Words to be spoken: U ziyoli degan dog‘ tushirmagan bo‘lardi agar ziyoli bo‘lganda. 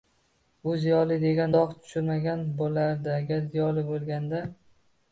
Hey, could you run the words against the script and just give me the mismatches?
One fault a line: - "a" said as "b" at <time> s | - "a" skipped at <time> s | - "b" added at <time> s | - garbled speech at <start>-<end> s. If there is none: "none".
none